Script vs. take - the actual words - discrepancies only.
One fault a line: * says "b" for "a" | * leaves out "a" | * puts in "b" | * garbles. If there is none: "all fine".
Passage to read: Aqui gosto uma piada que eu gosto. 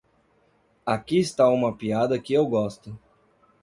* says "está" for "gosto"